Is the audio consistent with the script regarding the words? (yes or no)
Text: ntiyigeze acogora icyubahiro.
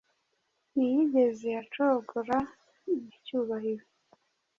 yes